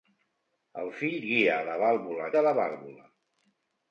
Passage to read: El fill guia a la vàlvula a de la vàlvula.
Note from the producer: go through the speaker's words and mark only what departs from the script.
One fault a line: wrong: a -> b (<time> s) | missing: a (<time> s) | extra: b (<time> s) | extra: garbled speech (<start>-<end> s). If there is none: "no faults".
no faults